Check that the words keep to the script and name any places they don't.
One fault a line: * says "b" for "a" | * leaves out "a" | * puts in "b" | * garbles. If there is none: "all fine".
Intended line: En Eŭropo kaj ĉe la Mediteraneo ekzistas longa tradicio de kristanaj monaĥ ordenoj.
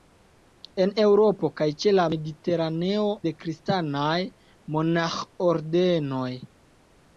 * leaves out "ekzistas longa tradicio"